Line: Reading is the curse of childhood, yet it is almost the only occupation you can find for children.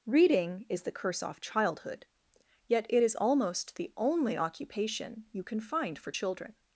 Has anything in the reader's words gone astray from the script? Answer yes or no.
yes